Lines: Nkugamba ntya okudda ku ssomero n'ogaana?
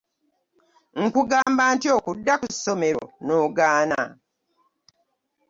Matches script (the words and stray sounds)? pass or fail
fail